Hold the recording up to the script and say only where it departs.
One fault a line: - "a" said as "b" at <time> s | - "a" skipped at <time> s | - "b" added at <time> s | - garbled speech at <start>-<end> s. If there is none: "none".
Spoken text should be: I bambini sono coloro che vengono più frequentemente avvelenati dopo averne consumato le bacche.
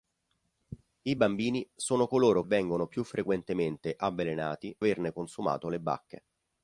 - "che" skipped at 2.4 s
- "dopo" skipped at 4.8 s